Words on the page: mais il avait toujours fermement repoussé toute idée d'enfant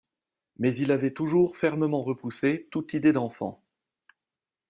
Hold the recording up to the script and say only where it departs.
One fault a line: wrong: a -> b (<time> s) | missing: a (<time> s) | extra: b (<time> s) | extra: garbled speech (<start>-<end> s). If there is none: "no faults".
no faults